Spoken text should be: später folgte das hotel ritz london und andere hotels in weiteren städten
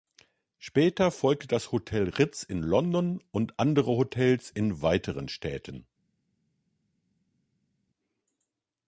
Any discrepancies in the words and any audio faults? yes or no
yes